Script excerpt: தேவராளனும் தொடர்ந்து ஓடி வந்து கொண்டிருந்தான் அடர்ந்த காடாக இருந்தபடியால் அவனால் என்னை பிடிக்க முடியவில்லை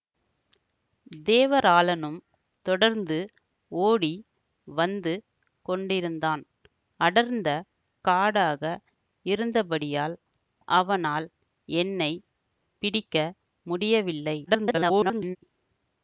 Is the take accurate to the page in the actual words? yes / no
no